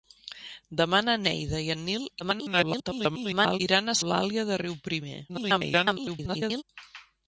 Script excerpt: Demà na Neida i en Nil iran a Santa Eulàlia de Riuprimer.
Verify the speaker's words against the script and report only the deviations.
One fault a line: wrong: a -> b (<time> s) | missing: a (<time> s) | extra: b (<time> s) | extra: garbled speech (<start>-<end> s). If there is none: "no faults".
extra: garbled speech (2.2-3.6 s)
missing: Santa (4.0 s)
extra: garbled speech (5.3-6.6 s)